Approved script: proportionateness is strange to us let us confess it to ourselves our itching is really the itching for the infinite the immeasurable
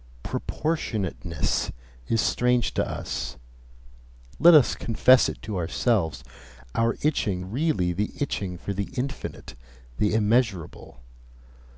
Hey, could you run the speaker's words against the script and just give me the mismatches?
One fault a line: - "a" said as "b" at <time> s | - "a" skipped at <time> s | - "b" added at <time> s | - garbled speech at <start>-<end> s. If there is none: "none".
- "is" skipped at 7.4 s